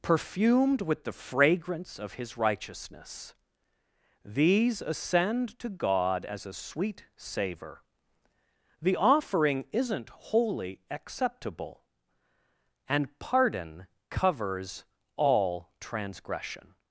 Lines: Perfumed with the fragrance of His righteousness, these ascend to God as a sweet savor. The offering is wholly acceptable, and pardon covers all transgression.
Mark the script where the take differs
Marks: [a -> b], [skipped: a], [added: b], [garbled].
Perfumed with the fragrance of His righteousness, these ascend to God as a sweet savor. The offering [is -> isn't] wholly acceptable, and pardon covers all transgression.